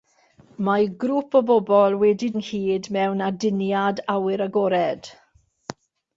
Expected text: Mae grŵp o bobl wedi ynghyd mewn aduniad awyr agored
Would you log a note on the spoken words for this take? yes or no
no